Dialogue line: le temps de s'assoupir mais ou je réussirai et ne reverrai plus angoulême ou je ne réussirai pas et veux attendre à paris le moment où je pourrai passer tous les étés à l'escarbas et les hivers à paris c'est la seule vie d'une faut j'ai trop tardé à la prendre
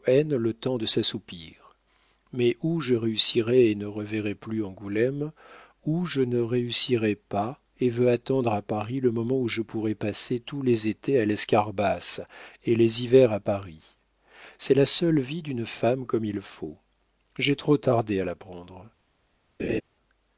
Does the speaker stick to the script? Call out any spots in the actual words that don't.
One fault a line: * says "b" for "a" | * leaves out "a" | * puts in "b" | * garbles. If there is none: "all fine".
* puts in "femme comme il"